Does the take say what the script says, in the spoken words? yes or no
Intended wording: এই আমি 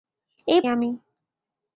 yes